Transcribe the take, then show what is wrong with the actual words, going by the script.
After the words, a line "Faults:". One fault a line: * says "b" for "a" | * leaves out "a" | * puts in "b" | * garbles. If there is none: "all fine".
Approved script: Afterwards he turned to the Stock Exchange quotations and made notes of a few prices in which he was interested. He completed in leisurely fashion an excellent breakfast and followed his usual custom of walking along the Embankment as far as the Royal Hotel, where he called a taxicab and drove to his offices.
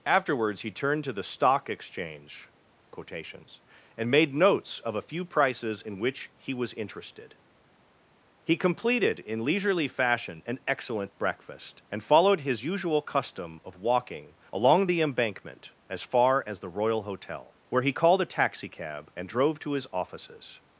Afterwards he turned to the Stock Exchange quotations and made notes of a few prices in which he was interested. He completed in leisurely fashion an excellent breakfast and followed his usual custom of walking along the Embankment as far as the Royal Hotel, where he called a taxicab and drove to his offices.
Faults:
all fine